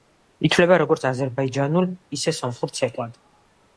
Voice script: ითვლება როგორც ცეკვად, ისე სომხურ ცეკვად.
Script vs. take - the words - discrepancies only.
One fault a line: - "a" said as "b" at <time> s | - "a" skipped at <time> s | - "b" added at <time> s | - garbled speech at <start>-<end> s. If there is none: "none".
- "ცეკვად" said as "აზერბაიჯანულ" at 1.1 s